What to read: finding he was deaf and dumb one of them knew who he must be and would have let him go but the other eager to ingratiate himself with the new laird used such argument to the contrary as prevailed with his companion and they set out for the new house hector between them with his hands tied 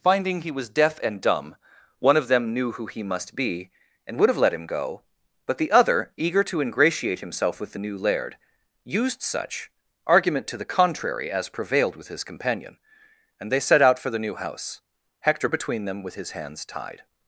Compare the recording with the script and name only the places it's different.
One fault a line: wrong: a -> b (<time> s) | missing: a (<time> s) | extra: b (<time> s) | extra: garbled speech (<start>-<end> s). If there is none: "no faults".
no faults